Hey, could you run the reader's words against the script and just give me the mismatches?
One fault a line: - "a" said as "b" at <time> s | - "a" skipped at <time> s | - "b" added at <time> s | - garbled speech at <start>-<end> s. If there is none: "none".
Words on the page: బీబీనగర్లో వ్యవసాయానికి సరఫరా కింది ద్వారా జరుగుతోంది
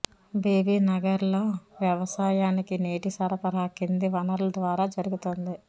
- "నీటి" added at 2.8 s
- "వనరుల" added at 4.2 s